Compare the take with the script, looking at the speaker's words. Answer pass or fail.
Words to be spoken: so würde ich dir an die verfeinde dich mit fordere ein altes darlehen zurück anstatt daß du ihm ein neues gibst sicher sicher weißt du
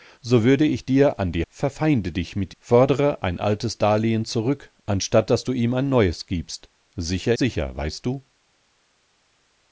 pass